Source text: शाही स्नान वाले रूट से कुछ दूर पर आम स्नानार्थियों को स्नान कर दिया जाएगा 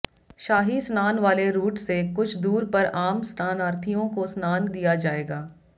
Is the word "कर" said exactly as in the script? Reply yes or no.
no